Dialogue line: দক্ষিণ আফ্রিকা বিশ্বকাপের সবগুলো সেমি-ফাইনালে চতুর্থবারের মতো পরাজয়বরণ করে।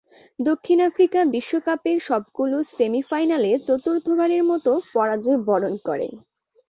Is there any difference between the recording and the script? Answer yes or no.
no